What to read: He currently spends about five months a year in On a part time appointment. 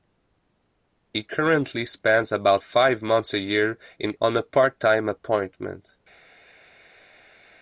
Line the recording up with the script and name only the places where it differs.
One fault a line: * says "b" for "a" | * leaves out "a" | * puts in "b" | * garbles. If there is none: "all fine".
all fine